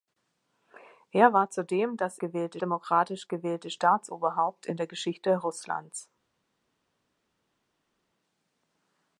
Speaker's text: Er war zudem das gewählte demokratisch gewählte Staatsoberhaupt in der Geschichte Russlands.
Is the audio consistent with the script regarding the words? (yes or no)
yes